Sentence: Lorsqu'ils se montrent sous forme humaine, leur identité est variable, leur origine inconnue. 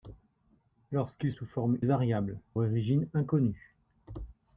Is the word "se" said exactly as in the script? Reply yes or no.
no